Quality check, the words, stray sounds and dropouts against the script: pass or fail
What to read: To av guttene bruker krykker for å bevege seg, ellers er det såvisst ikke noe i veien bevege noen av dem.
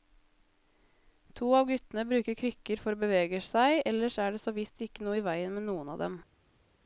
fail